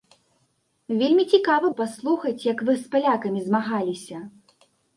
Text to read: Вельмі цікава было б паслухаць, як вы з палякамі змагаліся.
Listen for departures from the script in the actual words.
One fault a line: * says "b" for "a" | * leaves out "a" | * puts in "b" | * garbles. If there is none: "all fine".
* leaves out "было"